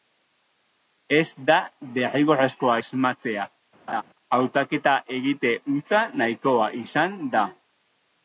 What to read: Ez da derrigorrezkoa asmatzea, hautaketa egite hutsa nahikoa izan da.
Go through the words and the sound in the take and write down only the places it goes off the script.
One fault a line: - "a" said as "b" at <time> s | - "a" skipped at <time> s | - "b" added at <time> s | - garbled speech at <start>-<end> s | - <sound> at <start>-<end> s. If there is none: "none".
- laugh at 3.9-4.0 s